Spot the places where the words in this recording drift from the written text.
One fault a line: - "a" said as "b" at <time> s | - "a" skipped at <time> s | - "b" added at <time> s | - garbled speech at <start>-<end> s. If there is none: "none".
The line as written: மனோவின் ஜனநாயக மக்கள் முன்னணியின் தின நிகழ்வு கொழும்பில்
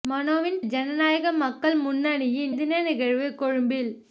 none